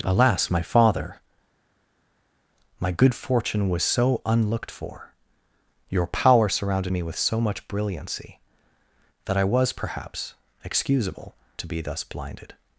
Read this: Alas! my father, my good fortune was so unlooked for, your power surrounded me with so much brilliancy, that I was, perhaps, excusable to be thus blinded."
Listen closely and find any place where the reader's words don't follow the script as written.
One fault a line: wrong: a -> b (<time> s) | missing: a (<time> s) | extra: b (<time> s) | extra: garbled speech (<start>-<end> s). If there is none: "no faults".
no faults